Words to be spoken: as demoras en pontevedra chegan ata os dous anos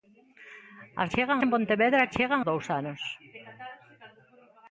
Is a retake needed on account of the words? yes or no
yes